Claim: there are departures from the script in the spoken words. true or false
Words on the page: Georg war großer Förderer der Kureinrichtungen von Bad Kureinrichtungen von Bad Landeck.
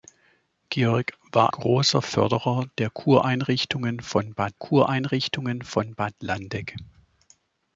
false